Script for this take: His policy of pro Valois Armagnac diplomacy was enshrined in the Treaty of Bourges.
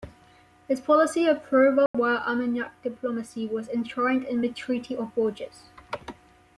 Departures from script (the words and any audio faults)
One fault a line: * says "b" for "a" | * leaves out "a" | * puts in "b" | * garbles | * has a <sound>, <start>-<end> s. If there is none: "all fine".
* has a dropout, 1.9-1.9 s